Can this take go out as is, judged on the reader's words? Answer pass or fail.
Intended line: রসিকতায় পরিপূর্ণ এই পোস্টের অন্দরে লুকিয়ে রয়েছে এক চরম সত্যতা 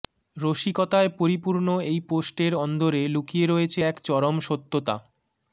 pass